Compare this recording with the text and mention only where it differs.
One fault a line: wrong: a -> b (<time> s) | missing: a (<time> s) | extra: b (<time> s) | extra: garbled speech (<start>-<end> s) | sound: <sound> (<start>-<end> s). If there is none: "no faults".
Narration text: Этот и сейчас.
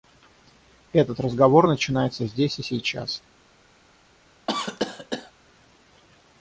extra: разговор начинается здесь (1.2 s)
sound: cough (4.5-5.3 s)